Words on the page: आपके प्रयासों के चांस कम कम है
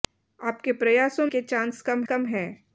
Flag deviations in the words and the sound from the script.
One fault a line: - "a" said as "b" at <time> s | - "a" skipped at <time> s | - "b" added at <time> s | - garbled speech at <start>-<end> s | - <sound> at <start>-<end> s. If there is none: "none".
none